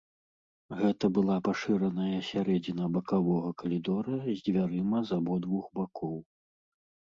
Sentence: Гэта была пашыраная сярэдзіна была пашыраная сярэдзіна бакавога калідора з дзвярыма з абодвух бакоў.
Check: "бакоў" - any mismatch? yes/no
no